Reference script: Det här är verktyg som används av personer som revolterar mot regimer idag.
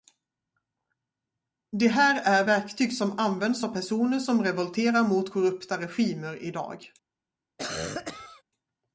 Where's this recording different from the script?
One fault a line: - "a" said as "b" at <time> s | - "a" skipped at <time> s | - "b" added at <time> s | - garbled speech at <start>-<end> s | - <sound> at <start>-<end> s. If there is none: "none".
- "korrupta" added at 5.3 s
- cough at 7.6-8.4 s